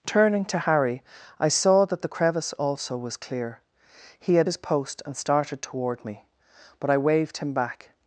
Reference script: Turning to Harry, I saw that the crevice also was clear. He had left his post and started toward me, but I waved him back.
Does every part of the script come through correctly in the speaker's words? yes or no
no